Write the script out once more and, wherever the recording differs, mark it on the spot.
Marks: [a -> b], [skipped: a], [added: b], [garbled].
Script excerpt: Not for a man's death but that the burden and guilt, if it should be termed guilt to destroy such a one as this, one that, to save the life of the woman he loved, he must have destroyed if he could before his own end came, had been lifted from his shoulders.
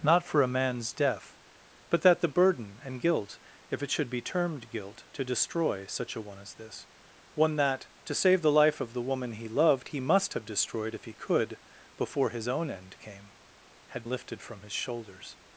Not for a man's death but that the burden and guilt, if it should be termed guilt to destroy such a one as this, one that, to save the life of the woman he loved, he must have destroyed if he could before his own end came, had [skipped: been] lifted from his shoulders.